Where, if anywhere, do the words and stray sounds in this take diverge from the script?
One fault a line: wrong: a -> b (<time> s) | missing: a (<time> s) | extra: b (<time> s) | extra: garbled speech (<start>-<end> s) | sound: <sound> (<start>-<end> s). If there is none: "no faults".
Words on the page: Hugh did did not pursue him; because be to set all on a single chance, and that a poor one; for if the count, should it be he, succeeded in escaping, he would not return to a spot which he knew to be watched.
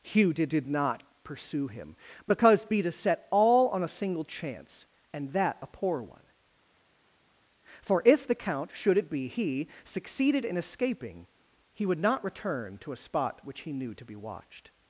no faults